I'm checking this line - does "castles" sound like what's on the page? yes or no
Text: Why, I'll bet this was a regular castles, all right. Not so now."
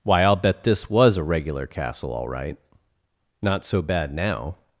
no